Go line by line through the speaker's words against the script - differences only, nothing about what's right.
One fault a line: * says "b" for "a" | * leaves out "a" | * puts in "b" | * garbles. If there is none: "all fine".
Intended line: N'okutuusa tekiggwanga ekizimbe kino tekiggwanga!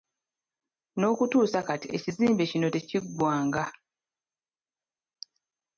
* says "kati" for "tekiggwanga"